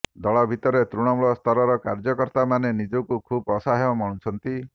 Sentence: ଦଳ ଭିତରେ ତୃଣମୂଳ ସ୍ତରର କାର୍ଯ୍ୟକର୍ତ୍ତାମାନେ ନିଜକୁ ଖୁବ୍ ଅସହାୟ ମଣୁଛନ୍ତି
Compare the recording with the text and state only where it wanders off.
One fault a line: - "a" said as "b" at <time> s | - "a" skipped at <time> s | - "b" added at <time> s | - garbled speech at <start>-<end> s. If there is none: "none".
none